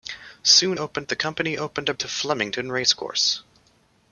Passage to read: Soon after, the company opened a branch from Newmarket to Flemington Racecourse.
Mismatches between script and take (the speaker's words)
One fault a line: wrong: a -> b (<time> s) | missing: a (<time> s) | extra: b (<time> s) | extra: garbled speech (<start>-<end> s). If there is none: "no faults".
wrong: after -> opened (0.8 s)
missing: branch from Newmarket (1.9 s)